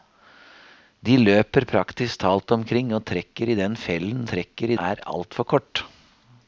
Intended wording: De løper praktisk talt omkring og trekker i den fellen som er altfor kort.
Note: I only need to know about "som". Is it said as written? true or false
false